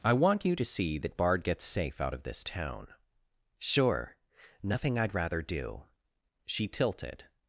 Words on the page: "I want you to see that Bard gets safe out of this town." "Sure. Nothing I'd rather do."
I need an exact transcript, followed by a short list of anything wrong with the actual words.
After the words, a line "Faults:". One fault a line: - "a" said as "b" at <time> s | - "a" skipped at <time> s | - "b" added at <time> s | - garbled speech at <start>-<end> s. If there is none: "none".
"I want you to see that Bard gets safe out of this town." "Sure. Nothing I'd rather do." She tilted
Faults:
- "She tilted" added at 6.5 s